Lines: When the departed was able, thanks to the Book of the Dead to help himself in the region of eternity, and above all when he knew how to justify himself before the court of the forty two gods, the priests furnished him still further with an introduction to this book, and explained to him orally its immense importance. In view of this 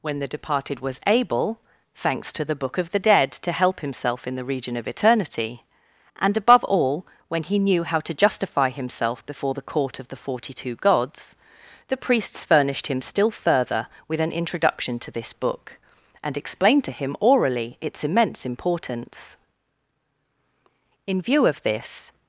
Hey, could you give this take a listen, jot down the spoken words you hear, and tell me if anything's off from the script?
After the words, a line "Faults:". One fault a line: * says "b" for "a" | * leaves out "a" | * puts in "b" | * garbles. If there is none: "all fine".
When the departed was able, thanks to the Book of the Dead to help himself in the region of eternity, and above all when he knew how to justify himself before the court of the forty two gods, the priests furnished him still further with an introduction to this book, and explained to him orally its immense importance. In view of this
Faults:
all fine